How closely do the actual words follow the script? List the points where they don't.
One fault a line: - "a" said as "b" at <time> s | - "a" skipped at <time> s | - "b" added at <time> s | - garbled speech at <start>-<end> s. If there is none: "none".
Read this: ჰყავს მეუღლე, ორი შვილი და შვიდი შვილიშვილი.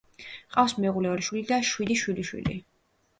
none